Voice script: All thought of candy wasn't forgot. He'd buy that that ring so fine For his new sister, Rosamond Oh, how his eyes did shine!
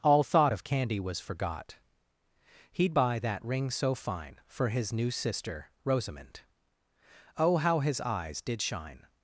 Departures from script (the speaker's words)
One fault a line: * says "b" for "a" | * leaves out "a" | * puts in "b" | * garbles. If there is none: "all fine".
* says "was" for "wasn't"
* leaves out "that"